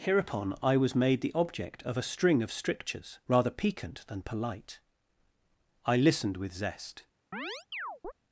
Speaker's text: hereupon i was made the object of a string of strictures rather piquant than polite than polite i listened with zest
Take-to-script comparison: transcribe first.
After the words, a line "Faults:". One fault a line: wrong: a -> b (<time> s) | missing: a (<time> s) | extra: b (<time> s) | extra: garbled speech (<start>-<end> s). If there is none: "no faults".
hereupon i was made the object of a string of strictures rather piquant than polite i listened with zest
Faults:
missing: than polite (4.8 s)